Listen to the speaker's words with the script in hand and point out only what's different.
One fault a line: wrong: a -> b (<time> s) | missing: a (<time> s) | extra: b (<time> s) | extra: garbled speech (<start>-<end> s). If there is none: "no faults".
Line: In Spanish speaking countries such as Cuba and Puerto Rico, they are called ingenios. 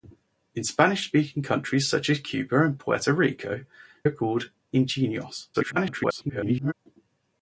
missing: they (3.6 s)
extra: garbled speech (5.5-6.7 s)